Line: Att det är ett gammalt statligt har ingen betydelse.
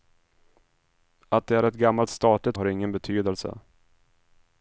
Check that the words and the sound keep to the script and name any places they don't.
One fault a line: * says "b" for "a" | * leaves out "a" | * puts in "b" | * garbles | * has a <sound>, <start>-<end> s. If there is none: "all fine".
all fine